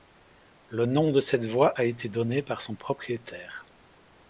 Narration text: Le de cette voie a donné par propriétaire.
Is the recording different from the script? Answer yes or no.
yes